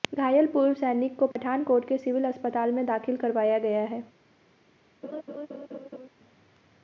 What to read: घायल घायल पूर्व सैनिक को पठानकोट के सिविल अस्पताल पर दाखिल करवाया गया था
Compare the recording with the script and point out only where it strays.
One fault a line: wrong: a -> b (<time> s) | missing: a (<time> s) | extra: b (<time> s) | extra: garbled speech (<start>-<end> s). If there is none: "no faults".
missing: घायल (0.5 s)
wrong: पर -> में (2.7 s)
wrong: था -> है (3.9 s)